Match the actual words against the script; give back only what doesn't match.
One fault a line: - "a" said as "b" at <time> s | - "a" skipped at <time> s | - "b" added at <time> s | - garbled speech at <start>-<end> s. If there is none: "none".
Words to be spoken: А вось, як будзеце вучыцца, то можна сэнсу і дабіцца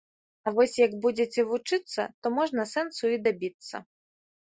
none